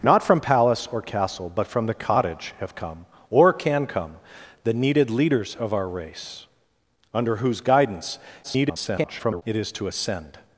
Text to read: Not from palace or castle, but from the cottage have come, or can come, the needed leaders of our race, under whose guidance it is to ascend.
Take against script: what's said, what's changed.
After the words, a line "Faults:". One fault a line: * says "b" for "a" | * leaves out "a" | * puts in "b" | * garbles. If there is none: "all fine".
Not from palace or castle, but from the cottage have come, or can come, the needed leaders of our race, under whose guidance [garbled] it is to ascend.
Faults:
* garbles